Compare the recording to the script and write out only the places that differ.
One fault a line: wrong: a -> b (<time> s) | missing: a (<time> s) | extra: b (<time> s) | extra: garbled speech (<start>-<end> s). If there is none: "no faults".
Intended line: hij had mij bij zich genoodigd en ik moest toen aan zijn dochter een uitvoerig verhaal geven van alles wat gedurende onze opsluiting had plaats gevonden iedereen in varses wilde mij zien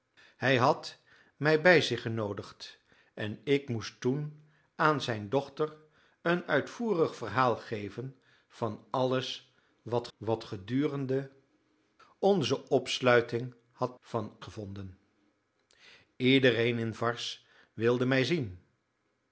extra: wat (10.2 s)
wrong: plaats -> van (14.0 s)